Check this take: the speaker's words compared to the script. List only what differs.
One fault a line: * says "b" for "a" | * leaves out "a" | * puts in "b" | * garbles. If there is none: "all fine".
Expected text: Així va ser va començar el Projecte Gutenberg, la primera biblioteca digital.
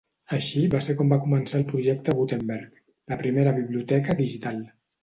* puts in "com"